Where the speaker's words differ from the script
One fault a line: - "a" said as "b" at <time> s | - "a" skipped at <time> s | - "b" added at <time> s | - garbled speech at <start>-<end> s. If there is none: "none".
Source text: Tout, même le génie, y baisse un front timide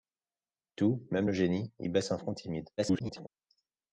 - garbled speech at 2.8-3.3 s